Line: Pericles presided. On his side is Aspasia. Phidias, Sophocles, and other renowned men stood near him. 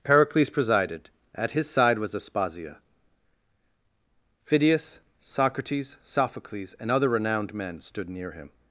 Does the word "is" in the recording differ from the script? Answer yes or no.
yes